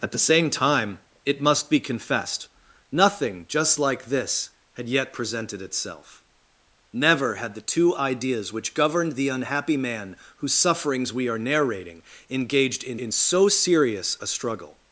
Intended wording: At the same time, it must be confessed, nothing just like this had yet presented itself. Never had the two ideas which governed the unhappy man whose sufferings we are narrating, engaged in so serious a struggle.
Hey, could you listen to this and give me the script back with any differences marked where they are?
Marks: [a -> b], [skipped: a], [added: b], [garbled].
At the same time, it must be confessed, nothing just like this had yet presented itself. Never had the two ideas which governed the unhappy man whose sufferings we are narrating, engaged in [added: in] so serious a struggle.